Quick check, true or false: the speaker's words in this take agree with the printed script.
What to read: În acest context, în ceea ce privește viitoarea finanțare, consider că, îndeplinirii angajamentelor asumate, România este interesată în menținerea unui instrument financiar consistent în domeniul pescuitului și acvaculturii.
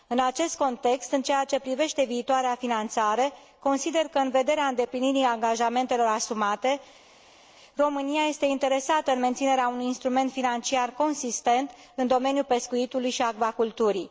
false